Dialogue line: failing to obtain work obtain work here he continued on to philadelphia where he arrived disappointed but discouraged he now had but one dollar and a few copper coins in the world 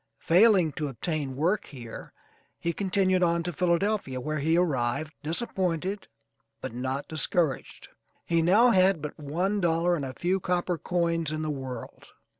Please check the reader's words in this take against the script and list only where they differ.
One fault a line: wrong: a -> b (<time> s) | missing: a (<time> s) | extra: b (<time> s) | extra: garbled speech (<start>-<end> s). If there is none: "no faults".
missing: obtain work (1.6 s)
extra: not (6.7 s)